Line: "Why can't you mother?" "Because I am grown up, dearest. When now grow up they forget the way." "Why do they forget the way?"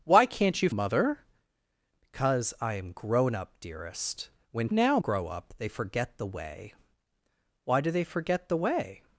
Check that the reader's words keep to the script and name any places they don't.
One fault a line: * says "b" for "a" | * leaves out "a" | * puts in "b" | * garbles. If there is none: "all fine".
all fine